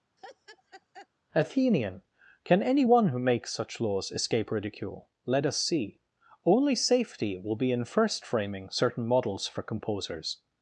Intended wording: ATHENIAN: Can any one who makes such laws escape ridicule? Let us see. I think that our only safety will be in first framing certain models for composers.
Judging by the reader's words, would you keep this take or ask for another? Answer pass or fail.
fail